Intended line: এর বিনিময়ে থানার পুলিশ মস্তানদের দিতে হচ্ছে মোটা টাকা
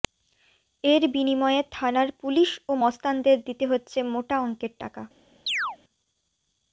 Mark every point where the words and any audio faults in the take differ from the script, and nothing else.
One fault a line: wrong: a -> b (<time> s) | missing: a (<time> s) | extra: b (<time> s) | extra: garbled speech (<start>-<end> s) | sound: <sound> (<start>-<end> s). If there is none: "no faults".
extra: ও (2.7 s)
extra: অঙ্কের (4.4 s)
sound: chirp (5.5-5.8 s)